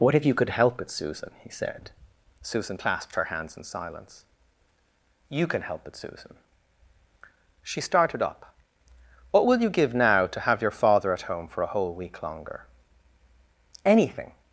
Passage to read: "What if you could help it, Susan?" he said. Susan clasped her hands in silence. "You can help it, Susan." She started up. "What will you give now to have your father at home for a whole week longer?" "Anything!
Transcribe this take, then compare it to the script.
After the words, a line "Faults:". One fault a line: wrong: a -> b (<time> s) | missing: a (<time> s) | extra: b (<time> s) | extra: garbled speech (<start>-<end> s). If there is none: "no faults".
"What if you could help it, Susan?" he said. Susan clasped her hands in silence. "You can help it, Susan." She started up. "What will you give now to have your father at home for a whole week longer?" "Anything!
Faults:
no faults